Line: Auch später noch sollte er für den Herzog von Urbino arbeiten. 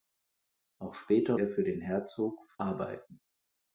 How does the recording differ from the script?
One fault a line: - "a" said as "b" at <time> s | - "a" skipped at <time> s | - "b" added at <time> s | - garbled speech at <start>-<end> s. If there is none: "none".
- "noch sollte" skipped at 1.4 s
- "von Urbino" skipped at 2.4 s